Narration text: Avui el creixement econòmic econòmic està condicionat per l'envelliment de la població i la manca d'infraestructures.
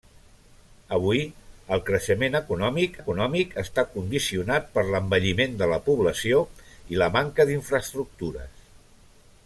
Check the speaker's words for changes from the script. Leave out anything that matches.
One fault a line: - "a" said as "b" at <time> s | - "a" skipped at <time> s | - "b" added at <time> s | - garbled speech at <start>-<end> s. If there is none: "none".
none